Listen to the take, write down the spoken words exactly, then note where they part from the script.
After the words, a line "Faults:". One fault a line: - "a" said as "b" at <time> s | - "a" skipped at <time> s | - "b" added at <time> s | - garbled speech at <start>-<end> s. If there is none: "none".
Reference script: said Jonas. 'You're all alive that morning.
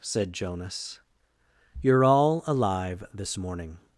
said Jonas. 'You're all alive this morning.
Faults:
- "that" said as "this" at 3.1 s